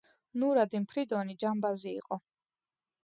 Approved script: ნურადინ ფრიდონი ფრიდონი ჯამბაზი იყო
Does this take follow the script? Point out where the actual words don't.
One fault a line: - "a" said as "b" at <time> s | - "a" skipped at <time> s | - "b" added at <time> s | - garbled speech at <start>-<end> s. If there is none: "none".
- "ფრიდონი" skipped at 1.4 s